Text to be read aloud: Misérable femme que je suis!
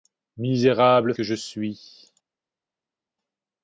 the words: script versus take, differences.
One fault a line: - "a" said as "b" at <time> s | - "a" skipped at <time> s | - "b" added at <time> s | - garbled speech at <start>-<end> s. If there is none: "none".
- "femme" skipped at 1.1 s